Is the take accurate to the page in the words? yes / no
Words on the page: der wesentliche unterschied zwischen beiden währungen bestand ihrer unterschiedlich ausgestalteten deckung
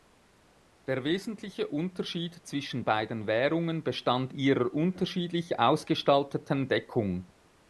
yes